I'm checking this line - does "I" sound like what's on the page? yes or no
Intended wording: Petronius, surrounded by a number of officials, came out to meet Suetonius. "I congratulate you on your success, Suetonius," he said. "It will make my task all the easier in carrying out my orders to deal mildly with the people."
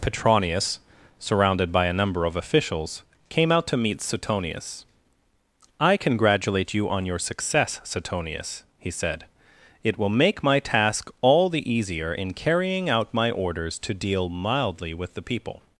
yes